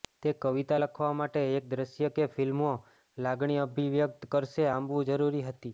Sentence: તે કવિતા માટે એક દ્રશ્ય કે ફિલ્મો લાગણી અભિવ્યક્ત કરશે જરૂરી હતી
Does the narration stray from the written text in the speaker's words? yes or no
yes